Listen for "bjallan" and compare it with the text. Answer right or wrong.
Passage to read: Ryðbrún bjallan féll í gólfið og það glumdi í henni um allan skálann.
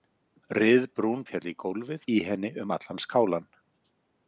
wrong